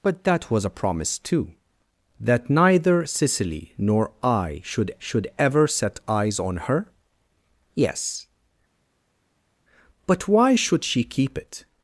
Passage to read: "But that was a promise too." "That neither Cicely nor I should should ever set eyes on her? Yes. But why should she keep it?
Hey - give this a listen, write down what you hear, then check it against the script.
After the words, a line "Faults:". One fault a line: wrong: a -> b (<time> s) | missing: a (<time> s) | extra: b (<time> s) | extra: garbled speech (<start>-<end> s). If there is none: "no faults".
"But that was a promise too." "That neither Cicely nor I should should ever set eyes on her? Yes. But why should she keep it?
Faults:
no faults